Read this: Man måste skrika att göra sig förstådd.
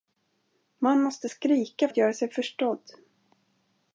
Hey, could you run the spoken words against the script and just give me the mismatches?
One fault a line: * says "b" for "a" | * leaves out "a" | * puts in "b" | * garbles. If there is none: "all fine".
all fine